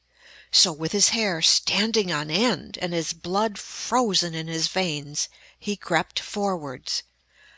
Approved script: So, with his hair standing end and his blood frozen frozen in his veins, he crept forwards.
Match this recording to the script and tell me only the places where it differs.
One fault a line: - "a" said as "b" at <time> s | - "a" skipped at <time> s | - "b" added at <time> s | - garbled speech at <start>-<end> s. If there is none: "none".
- "on" added at 2.1 s
- "frozen" skipped at 4.3 s